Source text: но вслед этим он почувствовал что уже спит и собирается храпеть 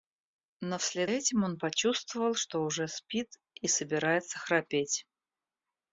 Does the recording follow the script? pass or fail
pass